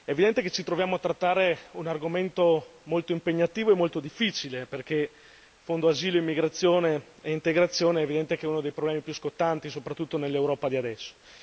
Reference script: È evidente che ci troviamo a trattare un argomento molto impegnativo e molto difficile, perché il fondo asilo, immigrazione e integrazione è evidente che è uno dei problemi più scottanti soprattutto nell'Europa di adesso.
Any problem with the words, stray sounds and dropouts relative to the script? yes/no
no